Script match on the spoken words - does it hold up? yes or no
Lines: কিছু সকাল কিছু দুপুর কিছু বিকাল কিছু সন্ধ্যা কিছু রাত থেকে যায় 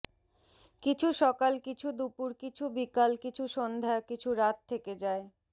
yes